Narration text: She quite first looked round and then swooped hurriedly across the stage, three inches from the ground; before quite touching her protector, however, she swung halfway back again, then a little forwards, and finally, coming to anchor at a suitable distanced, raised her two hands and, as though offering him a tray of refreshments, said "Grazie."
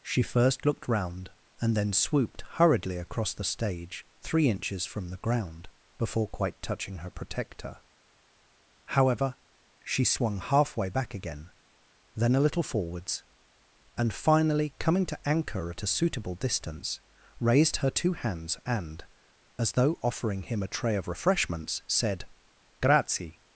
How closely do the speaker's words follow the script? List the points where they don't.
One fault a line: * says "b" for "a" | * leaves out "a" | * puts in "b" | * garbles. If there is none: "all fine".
* leaves out "quite"
* says "distance" for "distanced"